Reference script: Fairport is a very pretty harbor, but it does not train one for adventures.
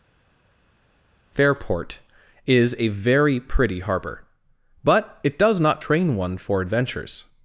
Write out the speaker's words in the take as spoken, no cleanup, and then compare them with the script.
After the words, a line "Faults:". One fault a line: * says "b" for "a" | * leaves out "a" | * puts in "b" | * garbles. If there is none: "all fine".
Fairport is a very pretty harbor, but it does not train one for adventures.
Faults:
all fine